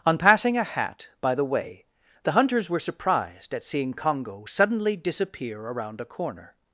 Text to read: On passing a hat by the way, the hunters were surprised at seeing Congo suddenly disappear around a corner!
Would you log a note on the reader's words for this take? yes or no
no